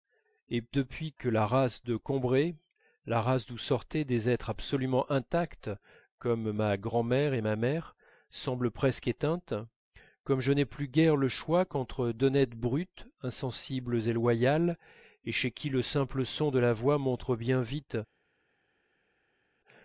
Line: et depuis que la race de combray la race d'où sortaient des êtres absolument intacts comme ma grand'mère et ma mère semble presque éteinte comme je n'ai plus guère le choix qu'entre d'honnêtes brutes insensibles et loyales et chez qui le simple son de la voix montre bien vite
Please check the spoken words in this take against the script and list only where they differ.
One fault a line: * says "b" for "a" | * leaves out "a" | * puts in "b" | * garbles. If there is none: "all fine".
all fine